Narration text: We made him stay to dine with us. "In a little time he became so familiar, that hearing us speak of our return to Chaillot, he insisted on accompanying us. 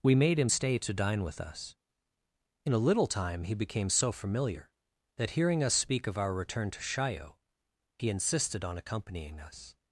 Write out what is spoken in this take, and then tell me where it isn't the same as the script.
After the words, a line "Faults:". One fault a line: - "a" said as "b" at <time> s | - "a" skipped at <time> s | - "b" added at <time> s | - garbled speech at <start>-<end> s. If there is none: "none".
We made him stay to dine with us. "In a little time he became so familiar, that hearing us speak of our return to Chaillot, he insisted on accompanying us.
Faults:
none